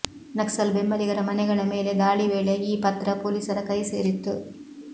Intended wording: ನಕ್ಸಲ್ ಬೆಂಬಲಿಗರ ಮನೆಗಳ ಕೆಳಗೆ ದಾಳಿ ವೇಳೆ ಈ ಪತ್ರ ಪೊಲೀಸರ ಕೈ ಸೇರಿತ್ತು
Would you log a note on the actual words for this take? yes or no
yes